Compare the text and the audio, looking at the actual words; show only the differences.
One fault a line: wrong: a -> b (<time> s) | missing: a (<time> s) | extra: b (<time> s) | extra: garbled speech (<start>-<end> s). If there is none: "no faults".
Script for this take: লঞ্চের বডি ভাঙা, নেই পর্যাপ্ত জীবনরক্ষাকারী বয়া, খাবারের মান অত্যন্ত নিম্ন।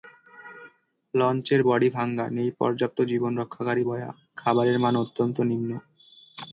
no faults